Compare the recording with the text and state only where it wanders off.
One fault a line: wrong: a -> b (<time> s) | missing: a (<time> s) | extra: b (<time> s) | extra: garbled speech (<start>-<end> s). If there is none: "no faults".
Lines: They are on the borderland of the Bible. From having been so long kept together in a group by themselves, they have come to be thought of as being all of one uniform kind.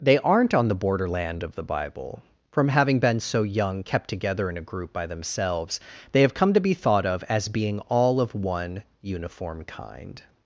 wrong: are -> aren't (0.2 s)
wrong: long -> young (3.4 s)